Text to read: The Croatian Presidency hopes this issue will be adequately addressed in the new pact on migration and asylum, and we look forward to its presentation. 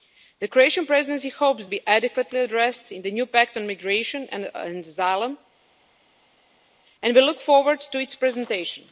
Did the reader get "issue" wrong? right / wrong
wrong